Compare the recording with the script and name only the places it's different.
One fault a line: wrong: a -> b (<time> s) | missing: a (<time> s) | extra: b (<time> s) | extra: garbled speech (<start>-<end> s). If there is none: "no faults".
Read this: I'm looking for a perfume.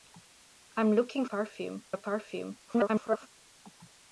wrong: for -> perfume (1.2 s)
extra: garbled speech (2.7-3.3 s)